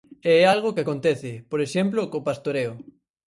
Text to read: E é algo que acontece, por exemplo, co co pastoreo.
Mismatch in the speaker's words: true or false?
true